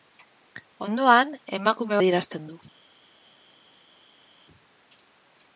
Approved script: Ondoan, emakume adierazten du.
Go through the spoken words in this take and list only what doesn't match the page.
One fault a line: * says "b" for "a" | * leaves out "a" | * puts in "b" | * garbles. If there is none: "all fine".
all fine